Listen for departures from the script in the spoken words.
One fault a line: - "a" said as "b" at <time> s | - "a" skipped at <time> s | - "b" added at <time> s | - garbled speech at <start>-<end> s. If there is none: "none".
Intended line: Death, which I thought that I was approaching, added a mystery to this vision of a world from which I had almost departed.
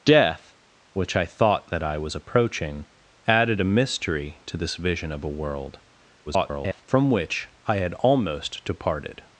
- garbled speech at 6.3-6.8 s